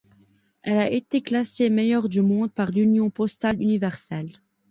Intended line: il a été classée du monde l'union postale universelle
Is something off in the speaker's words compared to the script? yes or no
yes